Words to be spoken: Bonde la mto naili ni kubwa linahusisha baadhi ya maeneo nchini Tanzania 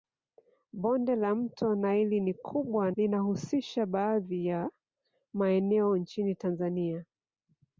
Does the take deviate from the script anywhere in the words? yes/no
no